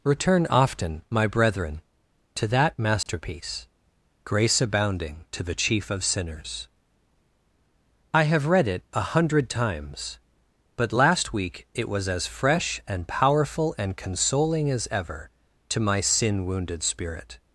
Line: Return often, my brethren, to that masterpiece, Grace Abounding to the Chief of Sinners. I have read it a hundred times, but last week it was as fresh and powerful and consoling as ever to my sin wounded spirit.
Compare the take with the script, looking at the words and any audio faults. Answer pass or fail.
fail